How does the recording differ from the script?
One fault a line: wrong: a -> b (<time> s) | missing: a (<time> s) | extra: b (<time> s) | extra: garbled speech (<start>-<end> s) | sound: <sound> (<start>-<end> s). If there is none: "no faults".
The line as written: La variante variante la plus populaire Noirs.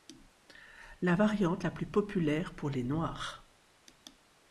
missing: variante (1.6 s)
extra: pour les (2.5 s)